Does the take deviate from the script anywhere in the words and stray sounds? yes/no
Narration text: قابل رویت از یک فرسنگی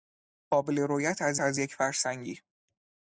yes